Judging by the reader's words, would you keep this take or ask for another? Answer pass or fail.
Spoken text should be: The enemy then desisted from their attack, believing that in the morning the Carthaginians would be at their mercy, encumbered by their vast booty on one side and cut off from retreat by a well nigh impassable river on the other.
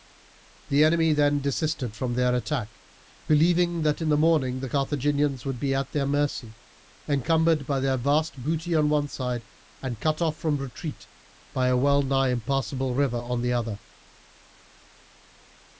pass